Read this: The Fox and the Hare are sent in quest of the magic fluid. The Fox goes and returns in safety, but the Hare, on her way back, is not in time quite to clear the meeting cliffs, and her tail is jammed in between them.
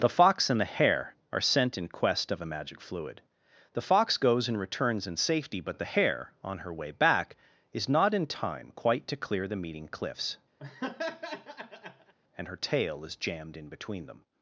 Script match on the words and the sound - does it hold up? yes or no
no